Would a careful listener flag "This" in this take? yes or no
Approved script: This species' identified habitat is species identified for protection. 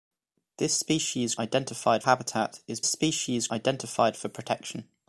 no